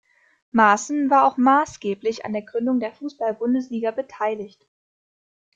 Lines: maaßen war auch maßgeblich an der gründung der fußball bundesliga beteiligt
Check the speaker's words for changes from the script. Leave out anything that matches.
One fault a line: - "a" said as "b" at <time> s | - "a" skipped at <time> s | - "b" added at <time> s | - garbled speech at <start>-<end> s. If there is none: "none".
none